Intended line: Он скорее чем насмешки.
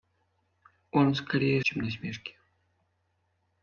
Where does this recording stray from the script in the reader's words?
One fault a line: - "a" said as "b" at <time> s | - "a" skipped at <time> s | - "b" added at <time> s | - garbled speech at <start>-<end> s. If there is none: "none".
none